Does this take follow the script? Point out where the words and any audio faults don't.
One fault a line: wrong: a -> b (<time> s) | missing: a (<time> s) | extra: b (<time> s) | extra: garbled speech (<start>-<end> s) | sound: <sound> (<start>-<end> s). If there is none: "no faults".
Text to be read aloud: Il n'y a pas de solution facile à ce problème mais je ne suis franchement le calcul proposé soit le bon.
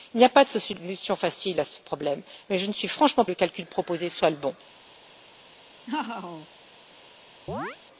sound: laugh (5.9-6.5 s)
sound: chirp (7.5-7.8 s)